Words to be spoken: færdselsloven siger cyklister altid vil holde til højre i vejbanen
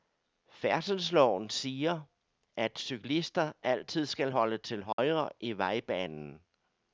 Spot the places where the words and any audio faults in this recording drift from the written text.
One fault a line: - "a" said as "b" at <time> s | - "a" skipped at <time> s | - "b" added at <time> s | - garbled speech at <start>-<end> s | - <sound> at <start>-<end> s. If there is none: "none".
- "at" added at 2.6 s
- "vil" said as "skal" at 4.0 s
- dropout at 4.9-5.0 s